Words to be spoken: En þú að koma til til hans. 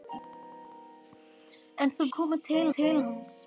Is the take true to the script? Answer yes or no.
yes